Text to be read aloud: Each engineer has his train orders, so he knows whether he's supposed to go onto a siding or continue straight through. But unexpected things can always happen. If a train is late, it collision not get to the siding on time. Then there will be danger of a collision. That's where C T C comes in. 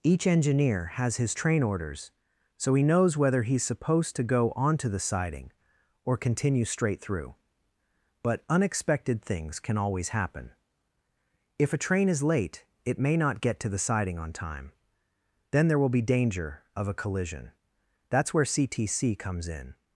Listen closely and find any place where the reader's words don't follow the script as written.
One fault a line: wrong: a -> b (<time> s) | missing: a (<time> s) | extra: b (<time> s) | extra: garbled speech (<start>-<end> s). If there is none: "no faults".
wrong: a -> the (4.9 s)
wrong: collision -> may (13.0 s)